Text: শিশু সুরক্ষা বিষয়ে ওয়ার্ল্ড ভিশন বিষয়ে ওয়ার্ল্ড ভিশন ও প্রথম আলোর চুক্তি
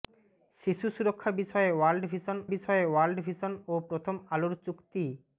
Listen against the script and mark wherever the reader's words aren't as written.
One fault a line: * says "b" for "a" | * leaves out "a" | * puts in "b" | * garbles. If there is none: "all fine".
all fine